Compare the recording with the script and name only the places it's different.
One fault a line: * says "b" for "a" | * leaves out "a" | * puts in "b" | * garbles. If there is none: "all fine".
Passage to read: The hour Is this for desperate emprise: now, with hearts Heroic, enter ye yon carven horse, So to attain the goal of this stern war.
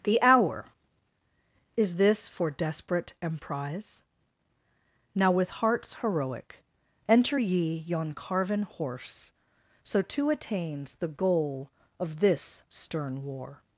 * says "attains" for "attain"